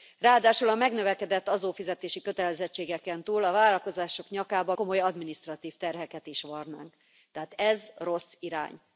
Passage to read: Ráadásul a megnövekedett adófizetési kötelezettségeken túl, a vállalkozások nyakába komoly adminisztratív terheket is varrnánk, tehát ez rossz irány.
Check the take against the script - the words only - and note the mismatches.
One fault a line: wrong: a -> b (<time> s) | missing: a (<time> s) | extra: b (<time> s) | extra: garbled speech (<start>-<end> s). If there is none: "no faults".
no faults